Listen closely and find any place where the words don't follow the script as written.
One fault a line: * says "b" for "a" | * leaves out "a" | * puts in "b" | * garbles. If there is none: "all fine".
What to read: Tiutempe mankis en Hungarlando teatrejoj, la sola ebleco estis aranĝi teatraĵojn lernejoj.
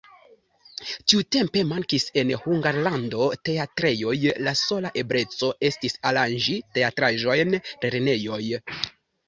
all fine